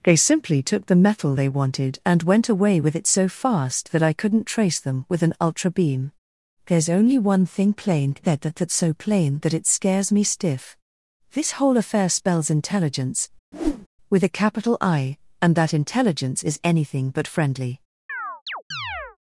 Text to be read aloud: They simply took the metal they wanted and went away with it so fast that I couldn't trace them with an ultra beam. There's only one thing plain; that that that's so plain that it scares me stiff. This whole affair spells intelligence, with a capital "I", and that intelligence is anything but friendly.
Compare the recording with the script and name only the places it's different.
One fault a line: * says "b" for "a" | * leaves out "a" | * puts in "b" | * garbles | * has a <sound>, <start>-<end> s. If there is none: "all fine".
* has a whoosh, 13.5-13.9 s
* has a chirp, 18.1-19.2 s